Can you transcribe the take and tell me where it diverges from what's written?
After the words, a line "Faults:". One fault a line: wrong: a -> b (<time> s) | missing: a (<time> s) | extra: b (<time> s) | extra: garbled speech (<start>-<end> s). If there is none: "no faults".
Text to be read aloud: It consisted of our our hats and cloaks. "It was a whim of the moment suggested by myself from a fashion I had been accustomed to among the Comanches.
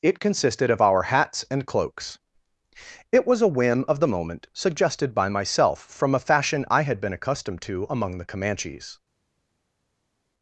It consisted of our hats and cloaks. "It was a whim of the moment suggested by myself from a fashion I had been accustomed to among the Comanches.
Faults:
missing: our (1.0 s)